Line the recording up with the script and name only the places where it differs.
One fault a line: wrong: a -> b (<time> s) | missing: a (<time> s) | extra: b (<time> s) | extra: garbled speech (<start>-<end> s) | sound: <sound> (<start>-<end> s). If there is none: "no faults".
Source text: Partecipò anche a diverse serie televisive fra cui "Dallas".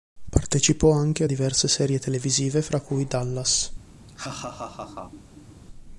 sound: laugh (4.1-5.6 s)